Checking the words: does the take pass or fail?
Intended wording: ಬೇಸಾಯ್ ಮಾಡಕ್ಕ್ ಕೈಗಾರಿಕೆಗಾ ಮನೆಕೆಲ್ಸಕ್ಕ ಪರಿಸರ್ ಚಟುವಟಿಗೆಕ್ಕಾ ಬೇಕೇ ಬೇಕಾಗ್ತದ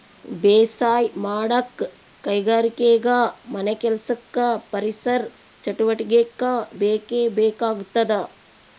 pass